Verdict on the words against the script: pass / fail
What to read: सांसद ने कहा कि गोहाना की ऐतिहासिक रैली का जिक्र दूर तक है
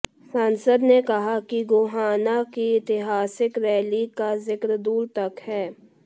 pass